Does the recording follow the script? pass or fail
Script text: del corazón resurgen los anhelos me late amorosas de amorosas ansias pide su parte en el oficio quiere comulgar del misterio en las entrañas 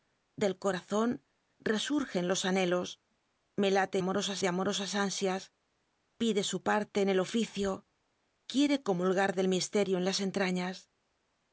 pass